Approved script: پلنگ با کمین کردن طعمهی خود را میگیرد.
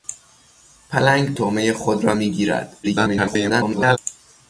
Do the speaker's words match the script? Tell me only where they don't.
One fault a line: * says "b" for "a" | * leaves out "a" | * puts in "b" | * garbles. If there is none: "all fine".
* leaves out "با کمین کردن"
* garbles